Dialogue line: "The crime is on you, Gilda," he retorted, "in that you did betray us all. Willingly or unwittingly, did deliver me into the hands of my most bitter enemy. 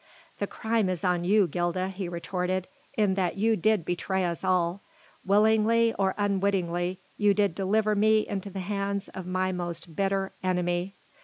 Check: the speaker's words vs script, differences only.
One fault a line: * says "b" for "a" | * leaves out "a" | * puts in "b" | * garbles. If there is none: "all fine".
* puts in "you"